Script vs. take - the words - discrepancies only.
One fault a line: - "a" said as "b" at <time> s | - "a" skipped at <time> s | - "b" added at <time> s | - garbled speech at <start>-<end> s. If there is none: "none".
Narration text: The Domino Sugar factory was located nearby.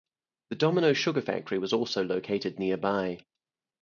- "also" added at 1.7 s